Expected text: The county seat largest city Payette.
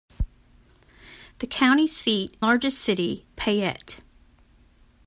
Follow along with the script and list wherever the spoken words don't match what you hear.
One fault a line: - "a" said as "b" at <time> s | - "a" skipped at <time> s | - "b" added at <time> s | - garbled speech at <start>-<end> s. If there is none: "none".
none